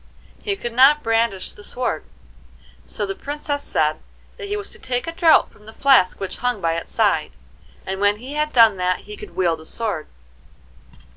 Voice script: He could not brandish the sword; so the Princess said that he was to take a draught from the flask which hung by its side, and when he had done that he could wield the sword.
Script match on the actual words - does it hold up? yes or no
yes